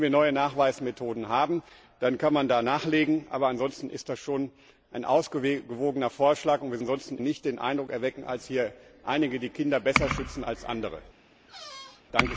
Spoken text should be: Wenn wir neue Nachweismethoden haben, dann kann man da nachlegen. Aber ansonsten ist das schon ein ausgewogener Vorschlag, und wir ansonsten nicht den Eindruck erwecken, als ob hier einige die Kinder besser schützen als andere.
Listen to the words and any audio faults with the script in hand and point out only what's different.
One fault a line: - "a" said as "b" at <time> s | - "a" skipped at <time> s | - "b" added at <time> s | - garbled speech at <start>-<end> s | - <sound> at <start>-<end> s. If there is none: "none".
- squeak at 11.5-12.0 s